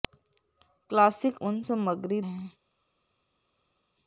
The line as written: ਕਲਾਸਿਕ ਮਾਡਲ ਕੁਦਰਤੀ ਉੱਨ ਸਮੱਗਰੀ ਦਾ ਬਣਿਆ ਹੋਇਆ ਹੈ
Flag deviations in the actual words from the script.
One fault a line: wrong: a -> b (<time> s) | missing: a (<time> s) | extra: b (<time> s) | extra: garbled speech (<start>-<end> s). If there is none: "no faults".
missing: ਮਾਡਲ ਕੁਦਰਤੀ (1.4 s)
missing: ਦਾ ਬਣਿਆ ਹੋਇਆ (2.2 s)